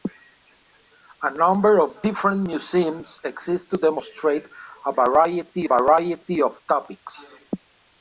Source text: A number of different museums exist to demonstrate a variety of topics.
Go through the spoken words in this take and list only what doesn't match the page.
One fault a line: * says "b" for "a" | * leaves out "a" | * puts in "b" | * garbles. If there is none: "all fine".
* puts in "variety"